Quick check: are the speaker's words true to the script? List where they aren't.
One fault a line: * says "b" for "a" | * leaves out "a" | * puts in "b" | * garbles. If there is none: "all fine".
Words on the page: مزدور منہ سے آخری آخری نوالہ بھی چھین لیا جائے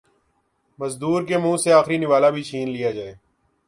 * puts in "کے"
* leaves out "آخری"